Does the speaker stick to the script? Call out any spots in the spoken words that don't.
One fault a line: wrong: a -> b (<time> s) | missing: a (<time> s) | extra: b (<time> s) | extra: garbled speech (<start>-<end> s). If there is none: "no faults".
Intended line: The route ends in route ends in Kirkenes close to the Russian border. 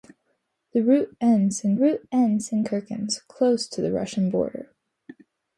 no faults